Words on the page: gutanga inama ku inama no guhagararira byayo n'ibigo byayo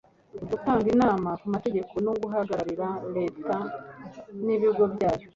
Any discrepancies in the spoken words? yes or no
yes